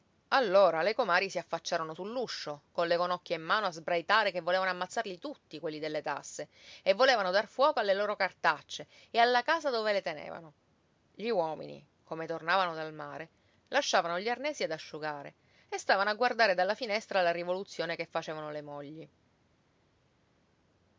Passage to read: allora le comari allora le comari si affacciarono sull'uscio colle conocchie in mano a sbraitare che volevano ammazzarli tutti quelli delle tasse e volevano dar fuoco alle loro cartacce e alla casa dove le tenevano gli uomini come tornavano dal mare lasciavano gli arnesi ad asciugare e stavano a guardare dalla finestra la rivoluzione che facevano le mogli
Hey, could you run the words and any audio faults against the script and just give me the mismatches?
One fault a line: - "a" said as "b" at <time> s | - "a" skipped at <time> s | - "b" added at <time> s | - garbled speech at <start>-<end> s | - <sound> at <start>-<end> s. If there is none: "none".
- "allora le comari" skipped at 1.3 s